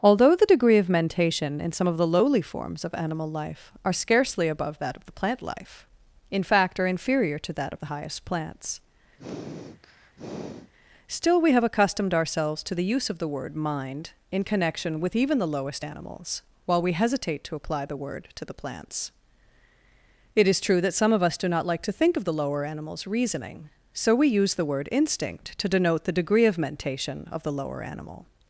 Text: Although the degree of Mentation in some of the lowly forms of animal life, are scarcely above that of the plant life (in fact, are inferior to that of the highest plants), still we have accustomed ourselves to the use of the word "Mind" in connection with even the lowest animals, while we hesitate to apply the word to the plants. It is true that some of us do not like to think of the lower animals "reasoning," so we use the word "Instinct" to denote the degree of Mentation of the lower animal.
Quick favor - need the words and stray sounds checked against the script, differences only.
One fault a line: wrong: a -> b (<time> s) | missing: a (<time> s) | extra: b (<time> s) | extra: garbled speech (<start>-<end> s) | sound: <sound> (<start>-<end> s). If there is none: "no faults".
sound: sniff (9.2-10.7 s)